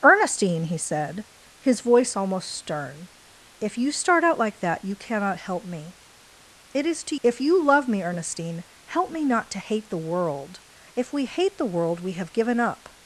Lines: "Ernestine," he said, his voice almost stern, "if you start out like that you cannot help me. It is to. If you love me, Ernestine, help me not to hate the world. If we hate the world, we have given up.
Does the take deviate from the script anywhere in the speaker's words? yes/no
no